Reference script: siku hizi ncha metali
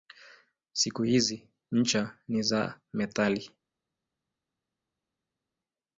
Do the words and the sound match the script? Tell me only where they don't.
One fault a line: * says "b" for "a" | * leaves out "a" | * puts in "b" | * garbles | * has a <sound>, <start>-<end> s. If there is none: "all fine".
* puts in "ni za"